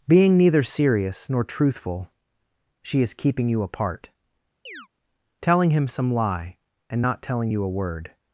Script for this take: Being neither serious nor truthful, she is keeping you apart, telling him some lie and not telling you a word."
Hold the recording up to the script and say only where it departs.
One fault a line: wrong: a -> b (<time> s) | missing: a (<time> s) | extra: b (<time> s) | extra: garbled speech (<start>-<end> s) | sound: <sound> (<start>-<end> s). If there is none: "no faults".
sound: chirp (4.7-4.9 s)